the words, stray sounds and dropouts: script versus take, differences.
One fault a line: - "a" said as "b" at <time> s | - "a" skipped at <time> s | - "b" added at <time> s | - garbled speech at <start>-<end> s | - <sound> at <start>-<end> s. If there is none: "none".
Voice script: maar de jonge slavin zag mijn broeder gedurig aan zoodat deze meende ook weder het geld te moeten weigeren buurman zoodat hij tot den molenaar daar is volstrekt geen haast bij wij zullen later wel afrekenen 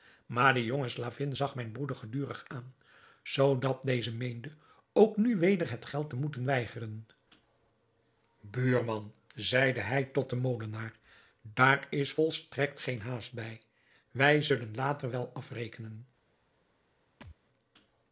- "nu" added at 5.2 s
- "zoodat" said as "zeide" at 9.3 s
- thud at 17.2-17.4 s